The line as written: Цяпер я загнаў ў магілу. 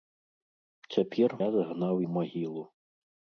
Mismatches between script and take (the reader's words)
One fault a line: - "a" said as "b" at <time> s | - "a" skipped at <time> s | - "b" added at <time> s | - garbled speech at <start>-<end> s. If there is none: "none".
none